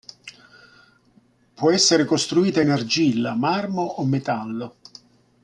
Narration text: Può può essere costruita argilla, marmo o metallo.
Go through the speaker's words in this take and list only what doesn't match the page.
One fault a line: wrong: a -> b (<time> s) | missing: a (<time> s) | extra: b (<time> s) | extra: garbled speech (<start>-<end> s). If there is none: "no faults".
missing: può (1.7 s)
extra: in (2.6 s)